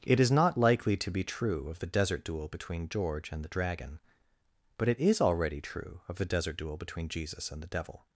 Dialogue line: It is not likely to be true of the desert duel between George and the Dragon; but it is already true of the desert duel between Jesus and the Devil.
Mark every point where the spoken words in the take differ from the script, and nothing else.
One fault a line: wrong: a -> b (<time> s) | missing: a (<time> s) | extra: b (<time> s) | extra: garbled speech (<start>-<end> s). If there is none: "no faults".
no faults